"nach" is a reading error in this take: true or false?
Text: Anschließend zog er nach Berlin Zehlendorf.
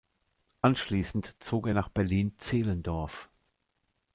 false